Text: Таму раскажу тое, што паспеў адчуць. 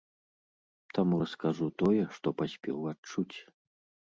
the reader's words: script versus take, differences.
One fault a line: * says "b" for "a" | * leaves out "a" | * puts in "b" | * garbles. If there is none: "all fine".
all fine